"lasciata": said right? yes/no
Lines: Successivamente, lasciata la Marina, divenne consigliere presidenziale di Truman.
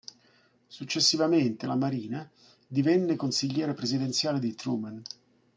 no